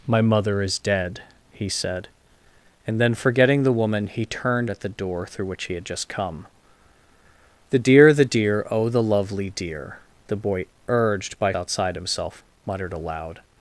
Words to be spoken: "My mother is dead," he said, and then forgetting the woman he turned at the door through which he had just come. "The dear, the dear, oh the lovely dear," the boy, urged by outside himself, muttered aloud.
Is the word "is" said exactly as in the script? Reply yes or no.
yes